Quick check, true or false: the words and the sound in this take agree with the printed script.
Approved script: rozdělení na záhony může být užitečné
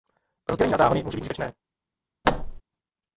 false